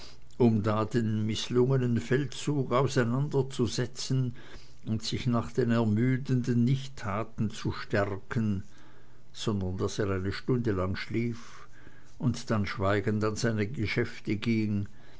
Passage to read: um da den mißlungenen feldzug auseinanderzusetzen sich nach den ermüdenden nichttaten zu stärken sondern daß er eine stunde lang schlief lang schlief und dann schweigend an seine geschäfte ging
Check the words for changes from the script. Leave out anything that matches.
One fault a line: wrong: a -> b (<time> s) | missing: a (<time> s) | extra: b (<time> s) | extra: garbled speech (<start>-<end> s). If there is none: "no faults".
extra: und (4.9 s)
missing: lang schlief (11.7 s)